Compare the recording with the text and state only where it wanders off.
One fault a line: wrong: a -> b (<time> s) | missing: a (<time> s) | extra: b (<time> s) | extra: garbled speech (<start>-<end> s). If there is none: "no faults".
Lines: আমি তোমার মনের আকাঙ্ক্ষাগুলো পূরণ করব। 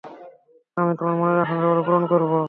no faults